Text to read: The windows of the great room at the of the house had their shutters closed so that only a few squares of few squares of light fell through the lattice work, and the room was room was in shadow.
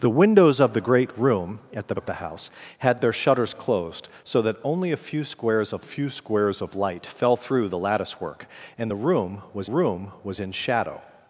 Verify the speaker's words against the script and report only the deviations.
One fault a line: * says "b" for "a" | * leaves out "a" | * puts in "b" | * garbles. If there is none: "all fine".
all fine